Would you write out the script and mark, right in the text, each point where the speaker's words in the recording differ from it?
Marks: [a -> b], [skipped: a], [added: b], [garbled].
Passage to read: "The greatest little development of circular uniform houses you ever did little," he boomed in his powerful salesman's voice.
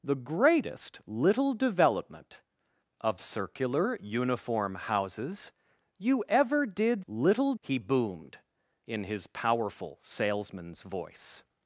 "The greatest little development of circular uniform houses you ever did little," he boomed in his powerful salesman's voice.